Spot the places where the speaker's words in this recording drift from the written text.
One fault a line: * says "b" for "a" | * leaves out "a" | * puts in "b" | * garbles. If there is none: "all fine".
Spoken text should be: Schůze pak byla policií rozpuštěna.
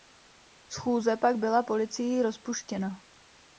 all fine